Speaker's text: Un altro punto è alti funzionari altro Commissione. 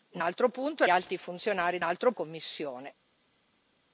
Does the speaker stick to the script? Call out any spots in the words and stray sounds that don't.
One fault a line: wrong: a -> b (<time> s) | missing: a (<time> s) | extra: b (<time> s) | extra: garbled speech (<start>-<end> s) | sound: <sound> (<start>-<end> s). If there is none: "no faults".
no faults